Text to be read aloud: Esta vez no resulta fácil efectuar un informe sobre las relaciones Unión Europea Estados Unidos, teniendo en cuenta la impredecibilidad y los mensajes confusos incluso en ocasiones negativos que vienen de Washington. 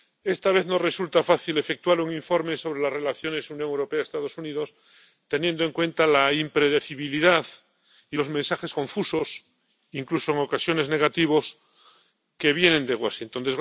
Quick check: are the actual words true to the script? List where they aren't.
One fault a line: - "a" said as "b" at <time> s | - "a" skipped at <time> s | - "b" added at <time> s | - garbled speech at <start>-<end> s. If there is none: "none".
none